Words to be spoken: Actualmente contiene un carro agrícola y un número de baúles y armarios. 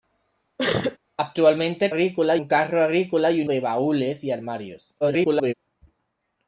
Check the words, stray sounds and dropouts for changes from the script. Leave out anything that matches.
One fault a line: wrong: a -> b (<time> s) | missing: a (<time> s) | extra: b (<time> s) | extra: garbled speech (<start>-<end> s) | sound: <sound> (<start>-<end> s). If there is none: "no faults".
sound: sneeze (0.6-1.0 s)
wrong: contiene -> agrícola (1.9 s)
missing: número (3.5 s)
extra: garbled speech (5.0-5.5 s)